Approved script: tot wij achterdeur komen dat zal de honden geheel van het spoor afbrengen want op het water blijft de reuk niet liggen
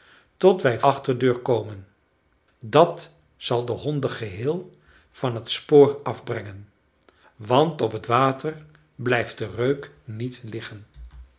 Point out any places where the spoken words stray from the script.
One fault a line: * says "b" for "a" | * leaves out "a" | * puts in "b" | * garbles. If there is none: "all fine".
all fine